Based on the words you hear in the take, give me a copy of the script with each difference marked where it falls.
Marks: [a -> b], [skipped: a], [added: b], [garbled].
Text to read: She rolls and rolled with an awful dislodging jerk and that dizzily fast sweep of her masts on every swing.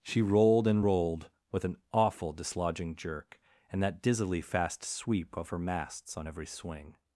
She [rolls -> rolled] and rolled with an awful dislodging jerk and that dizzily fast sweep of her masts on every swing.